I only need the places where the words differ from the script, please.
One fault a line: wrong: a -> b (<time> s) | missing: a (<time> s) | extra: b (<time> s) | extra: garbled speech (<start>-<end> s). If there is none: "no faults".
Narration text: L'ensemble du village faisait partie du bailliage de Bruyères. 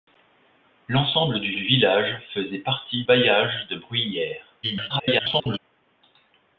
extra: du (1.5 s)
missing: du (3.0 s)
extra: garbled speech (4.6-5.6 s)